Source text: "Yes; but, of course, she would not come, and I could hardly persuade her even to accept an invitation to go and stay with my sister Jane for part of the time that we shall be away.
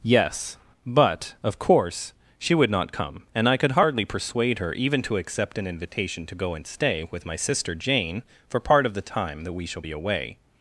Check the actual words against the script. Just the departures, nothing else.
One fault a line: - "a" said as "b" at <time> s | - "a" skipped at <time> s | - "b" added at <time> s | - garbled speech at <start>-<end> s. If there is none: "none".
none